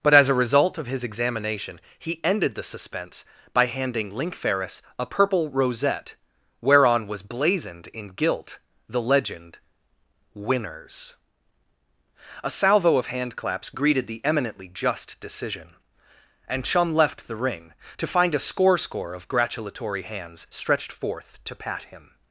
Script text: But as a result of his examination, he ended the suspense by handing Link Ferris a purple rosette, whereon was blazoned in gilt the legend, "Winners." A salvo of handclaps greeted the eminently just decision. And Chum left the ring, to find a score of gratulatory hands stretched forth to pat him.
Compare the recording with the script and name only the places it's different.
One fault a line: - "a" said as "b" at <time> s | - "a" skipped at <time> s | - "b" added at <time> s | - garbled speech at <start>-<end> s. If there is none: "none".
- "score" added at 18.8 s